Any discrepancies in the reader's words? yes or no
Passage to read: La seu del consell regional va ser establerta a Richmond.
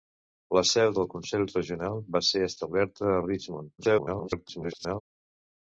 yes